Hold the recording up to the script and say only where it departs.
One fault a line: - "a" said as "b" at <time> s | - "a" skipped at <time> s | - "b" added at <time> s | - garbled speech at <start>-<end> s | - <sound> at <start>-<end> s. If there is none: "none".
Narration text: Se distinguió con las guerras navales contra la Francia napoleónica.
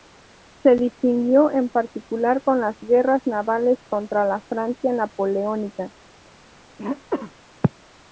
- "en particular" added at 1.5 s
- throat clearing at 6.8-7.3 s